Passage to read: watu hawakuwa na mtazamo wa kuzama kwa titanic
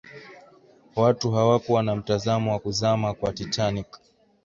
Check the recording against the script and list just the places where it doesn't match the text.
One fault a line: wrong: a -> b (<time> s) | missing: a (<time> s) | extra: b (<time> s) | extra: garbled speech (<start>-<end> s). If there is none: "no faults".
no faults